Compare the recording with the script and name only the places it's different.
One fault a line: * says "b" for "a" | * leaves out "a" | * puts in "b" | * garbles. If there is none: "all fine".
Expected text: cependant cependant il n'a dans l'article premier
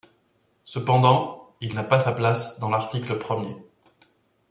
* leaves out "cependant"
* puts in "pas sa place"